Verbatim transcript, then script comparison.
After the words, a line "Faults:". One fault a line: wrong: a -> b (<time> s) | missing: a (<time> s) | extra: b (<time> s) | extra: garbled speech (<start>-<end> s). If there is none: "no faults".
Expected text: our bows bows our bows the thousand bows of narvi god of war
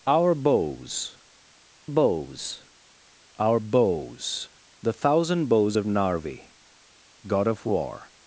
our bows bows our bows the thousand bows of narvi god of war
Faults:
no faults